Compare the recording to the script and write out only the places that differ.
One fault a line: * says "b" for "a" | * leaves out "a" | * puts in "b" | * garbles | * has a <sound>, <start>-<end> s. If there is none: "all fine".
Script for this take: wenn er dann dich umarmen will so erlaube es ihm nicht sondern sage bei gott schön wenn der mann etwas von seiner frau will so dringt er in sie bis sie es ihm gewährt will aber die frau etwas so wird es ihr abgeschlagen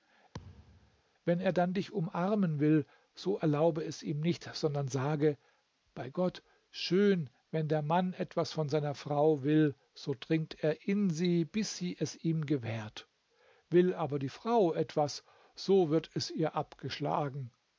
* has a thud, 0.3-1.0 s